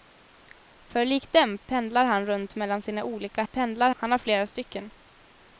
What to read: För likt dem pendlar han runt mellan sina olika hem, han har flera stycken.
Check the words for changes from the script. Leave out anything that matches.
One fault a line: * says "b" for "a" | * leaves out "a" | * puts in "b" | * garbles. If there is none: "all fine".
* says "pendlar" for "hem"